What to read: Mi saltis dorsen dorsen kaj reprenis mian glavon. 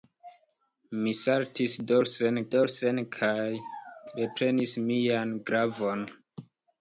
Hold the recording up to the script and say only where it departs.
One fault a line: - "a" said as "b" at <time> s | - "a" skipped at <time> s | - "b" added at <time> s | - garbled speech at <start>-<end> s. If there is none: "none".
none